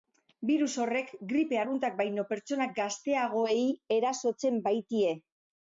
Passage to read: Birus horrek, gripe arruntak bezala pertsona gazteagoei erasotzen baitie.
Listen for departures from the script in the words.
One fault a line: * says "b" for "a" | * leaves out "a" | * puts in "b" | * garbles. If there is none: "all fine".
* says "baino" for "bezala"